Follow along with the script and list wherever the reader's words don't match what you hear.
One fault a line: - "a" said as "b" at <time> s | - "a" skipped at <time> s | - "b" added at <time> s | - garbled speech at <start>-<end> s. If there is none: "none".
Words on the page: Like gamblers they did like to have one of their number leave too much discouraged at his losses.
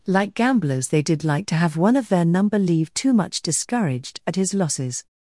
none